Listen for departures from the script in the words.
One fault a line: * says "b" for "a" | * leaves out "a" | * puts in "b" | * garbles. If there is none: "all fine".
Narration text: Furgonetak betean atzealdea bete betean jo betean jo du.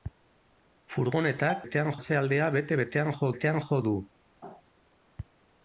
all fine